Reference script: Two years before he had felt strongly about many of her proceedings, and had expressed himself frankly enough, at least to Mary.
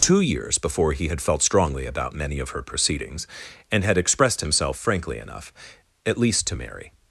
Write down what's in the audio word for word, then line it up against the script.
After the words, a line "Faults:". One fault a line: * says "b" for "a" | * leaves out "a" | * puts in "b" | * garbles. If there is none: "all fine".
Two years before he had felt strongly about many of her proceedings, and had expressed himself frankly enough, at least to Mary.
Faults:
all fine